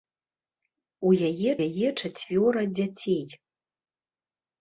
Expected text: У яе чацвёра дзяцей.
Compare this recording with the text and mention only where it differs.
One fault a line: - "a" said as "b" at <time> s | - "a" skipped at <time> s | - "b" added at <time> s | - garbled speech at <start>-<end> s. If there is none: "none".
- "яе" added at 1.7 s